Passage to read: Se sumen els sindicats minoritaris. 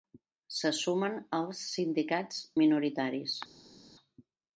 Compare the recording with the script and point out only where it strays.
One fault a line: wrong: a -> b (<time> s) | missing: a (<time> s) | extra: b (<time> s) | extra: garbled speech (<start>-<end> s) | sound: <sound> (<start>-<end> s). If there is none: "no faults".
no faults